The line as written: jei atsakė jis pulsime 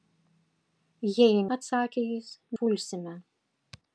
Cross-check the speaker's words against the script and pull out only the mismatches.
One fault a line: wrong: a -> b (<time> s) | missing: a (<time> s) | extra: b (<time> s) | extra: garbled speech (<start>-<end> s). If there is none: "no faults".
no faults